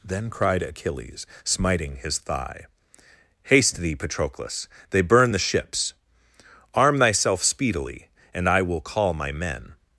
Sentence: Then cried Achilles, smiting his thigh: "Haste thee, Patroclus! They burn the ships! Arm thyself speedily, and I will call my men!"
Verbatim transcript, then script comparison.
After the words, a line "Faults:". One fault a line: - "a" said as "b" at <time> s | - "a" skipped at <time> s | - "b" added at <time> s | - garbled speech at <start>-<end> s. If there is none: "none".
Then cried Achilles, smiting his thigh: "Haste thee, Patroclus! They burn the ships! Arm thyself speedily, and I will call my men!"
Faults:
none